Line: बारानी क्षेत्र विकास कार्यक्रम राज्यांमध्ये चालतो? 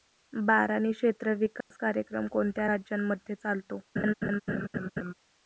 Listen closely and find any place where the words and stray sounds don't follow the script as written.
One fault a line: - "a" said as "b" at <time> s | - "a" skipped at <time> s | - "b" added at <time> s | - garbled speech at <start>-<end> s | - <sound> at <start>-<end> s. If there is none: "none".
- dropout at 1.6-1.7 s
- "कोणत्या" added at 2.3 s
- laugh at 4.0-5.1 s